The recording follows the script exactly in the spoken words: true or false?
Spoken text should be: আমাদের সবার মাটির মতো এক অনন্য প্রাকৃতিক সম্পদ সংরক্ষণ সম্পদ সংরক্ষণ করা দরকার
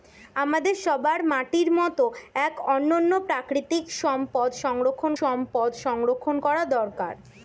true